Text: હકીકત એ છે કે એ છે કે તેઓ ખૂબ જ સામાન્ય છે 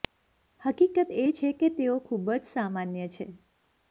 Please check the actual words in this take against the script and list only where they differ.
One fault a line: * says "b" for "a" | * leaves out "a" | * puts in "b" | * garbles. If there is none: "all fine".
* leaves out "એ છે કે"